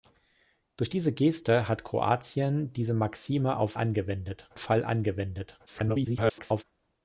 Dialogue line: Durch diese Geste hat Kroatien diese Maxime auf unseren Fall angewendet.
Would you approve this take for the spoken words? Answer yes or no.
no